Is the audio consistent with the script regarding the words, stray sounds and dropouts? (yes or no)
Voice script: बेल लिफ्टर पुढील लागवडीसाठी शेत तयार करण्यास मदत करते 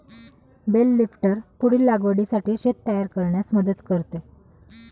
yes